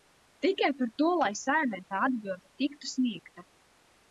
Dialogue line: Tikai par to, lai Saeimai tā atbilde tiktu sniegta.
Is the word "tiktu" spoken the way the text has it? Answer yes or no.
yes